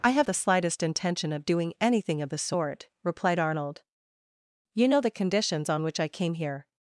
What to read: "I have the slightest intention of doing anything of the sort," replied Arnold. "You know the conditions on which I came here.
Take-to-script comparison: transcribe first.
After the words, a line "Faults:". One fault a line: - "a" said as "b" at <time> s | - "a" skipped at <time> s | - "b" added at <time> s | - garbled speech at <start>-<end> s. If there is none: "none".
"I have the slightest intention of doing anything of the sort," replied Arnold. "You know the conditions on which I came here.
Faults:
none